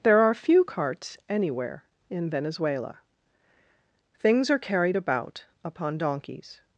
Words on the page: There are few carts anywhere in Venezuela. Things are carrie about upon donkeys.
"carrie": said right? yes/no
no